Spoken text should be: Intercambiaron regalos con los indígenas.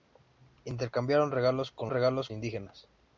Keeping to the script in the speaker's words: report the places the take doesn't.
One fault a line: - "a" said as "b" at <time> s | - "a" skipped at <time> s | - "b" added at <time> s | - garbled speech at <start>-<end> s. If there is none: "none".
- "los" said as "regalos" at 1.9 s